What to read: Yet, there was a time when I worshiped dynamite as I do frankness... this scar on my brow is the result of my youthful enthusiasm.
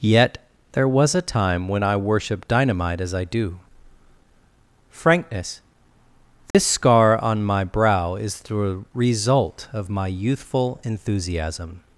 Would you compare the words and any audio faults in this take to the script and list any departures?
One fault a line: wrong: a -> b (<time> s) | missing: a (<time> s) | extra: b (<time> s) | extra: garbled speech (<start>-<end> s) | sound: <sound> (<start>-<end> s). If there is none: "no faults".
sound: dropout (6.5-6.5 s)